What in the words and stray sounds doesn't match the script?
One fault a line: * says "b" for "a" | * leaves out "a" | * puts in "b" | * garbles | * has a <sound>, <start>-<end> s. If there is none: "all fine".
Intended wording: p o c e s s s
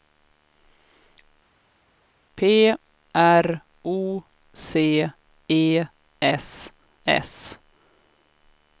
* puts in "r"
* leaves out "s"